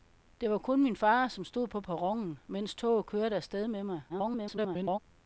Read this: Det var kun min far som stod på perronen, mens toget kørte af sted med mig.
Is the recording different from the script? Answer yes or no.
yes